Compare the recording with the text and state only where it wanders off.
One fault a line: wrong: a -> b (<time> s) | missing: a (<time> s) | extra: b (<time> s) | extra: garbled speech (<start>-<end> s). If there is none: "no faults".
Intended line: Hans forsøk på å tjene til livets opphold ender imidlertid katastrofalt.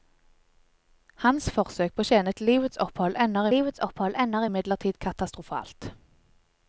extra: livets opphold ender (3.5 s)